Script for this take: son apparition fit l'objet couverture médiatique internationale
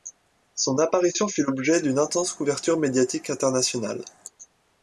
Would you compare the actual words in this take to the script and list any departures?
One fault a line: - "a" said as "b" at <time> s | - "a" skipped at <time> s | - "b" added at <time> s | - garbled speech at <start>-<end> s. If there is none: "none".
- "d'une intense" added at 1.8 s